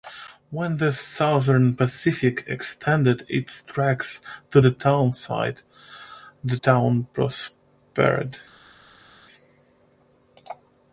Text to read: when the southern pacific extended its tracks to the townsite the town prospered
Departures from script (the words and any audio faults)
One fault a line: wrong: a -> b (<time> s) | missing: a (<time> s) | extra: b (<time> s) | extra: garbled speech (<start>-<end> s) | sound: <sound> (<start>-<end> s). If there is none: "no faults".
no faults